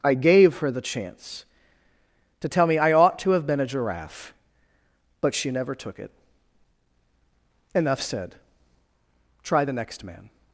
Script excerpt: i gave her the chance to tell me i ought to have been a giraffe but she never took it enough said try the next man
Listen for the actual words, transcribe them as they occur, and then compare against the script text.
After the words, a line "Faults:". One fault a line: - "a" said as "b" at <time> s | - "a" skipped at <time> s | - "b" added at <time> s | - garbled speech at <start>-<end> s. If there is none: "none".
i gave her the chance to tell me i ought to have been a giraffe but she never took it enough said try the next man
Faults:
none